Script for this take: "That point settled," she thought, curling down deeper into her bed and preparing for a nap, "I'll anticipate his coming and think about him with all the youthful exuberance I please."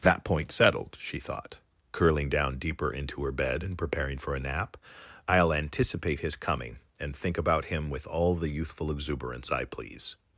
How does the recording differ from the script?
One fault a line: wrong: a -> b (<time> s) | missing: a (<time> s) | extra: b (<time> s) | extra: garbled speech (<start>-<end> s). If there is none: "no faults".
no faults